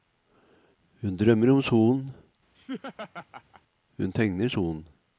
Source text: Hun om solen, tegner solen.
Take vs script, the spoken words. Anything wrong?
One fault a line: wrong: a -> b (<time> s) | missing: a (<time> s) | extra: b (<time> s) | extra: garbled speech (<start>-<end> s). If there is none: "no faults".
extra: drømmer (1.2 s)
extra: hun (4.0 s)